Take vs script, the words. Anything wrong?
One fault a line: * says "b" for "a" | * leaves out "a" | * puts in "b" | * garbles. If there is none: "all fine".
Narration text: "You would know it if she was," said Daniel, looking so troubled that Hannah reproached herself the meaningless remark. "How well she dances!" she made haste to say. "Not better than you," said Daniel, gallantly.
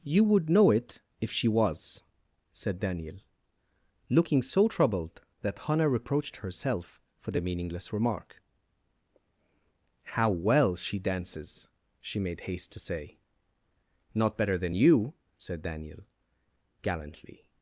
* puts in "for"